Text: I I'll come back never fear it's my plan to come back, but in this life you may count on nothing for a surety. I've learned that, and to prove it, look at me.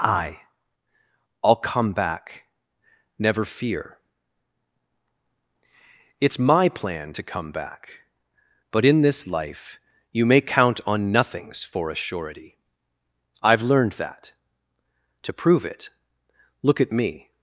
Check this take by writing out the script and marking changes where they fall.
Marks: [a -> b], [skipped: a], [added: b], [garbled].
I I'll come back never fear it's my plan to come back, but in this life you may count on [nothing -> nothings] for a surety. I've learned that, [skipped: and] to prove it, look at me.